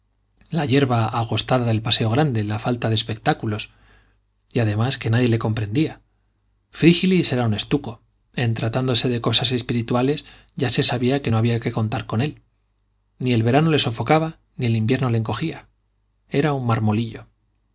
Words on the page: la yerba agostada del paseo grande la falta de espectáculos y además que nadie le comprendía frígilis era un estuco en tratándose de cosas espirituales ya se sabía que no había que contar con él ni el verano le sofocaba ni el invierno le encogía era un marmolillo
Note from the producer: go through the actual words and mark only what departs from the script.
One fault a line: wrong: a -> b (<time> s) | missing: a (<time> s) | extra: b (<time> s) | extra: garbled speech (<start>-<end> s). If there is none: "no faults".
no faults